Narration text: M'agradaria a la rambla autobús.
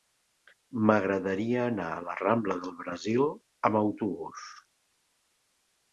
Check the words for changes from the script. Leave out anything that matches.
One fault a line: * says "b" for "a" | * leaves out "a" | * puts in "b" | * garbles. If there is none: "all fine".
* puts in "anar"
* puts in "del Brasil amb"